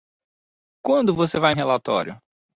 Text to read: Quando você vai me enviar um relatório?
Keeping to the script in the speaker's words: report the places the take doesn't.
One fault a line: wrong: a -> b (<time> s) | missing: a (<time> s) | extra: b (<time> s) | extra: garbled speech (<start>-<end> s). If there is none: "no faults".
missing: me enviar (1.5 s)